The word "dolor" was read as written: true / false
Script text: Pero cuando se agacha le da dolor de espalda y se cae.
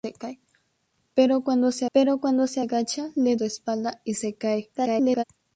false